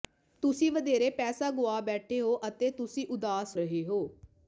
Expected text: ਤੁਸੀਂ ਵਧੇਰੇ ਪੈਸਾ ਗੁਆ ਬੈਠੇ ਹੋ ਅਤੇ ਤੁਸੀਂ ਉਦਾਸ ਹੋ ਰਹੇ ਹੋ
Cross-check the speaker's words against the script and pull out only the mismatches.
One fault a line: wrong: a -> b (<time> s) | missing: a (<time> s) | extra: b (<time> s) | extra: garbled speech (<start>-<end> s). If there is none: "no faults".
missing: ਹੋ (3.5 s)